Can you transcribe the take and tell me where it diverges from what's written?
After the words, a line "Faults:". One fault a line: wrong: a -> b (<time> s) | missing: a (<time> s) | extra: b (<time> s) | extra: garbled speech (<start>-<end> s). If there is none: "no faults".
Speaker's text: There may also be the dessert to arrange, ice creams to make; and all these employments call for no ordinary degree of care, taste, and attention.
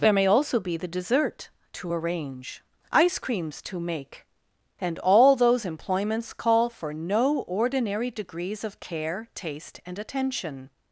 There may also be the dessert to arrange, ice creams to make; and all those employments call for no ordinary degrees of care, taste, and attention.
Faults:
wrong: these -> those (5.4 s)
wrong: degree -> degrees (8.1 s)